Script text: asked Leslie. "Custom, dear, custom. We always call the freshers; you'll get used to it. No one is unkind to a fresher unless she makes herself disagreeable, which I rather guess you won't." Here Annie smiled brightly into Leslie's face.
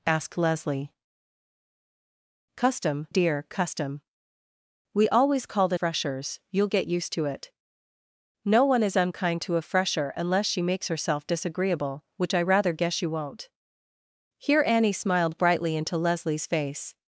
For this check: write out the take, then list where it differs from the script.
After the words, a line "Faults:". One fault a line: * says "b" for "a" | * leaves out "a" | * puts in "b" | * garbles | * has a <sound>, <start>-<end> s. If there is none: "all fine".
asked Leslie. "Custom, dear, custom. We always call the freshers; you'll get used to it. No one is unkind to a fresher unless she makes herself disagreeable, which I rather guess you won't." Here Annie smiled brightly into Leslie's face.
Faults:
all fine